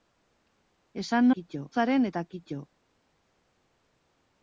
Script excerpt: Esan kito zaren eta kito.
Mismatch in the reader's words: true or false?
false